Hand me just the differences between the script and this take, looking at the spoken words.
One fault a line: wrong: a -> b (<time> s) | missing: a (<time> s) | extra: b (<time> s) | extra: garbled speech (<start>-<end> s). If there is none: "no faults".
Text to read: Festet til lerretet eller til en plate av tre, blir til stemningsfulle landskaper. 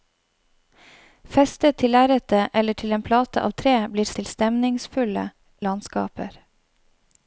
no faults